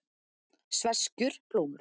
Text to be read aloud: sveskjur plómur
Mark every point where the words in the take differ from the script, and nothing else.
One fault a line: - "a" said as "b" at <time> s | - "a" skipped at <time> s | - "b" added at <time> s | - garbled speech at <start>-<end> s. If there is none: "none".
none